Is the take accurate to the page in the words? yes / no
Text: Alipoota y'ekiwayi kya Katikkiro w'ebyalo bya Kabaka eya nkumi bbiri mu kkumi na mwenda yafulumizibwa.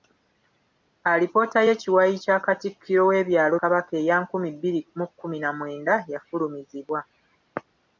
no